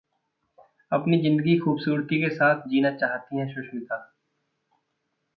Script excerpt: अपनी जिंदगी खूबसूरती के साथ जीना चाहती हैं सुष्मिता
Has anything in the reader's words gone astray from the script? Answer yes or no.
no